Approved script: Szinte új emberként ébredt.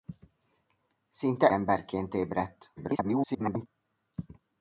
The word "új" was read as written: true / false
false